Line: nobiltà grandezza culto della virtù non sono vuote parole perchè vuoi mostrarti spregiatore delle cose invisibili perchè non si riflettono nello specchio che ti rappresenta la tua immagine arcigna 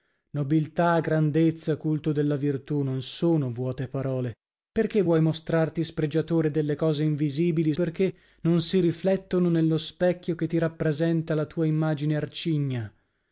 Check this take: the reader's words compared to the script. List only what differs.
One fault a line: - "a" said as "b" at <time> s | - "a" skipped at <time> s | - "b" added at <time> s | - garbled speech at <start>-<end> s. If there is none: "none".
none